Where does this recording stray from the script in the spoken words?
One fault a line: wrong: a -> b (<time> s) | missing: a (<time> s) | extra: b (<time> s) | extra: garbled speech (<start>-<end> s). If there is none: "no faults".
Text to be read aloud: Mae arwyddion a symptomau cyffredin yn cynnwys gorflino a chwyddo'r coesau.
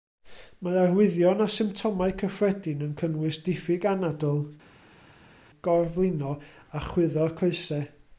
extra: diffyg anadl (3.5 s)